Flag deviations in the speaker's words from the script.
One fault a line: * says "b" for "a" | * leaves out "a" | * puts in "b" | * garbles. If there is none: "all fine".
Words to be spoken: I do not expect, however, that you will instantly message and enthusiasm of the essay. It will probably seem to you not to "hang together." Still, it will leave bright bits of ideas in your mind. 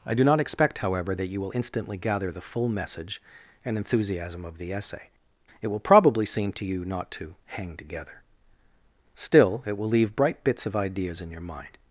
* puts in "gather the full"